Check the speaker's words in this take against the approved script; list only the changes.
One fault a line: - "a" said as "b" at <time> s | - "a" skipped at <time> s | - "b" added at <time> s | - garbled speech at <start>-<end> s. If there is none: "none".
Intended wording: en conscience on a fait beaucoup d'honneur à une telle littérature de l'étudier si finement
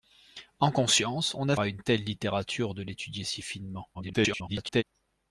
- "fait beaucoup d'honneur" skipped at 1.6 s
- garbled speech at 3.9-4.8 s